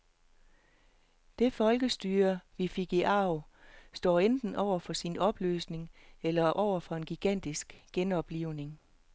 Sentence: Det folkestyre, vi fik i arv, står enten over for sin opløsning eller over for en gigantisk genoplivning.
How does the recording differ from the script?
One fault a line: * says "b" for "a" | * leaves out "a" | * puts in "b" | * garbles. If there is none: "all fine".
all fine